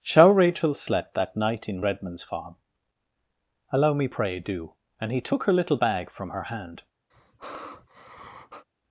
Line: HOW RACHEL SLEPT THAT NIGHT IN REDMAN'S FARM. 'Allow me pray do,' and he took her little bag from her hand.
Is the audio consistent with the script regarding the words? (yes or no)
no